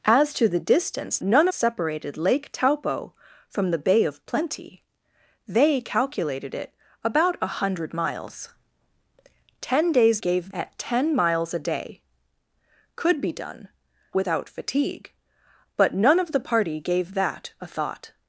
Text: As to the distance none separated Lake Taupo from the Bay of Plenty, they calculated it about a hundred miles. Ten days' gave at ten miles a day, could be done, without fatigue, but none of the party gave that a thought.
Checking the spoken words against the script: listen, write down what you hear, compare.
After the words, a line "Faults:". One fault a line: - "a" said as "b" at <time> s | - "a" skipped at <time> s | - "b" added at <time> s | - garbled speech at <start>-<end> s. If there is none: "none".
As to the distance none separated Lake Taupo from the Bay of Plenty, they calculated it about a hundred miles. Ten days' gave at ten miles a day, could be done, without fatigue, but none of the party gave that a thought.
Faults:
none